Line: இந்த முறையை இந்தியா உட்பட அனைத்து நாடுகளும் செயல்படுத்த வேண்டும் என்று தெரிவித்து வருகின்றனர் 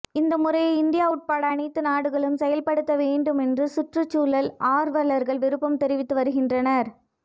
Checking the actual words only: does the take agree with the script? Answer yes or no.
no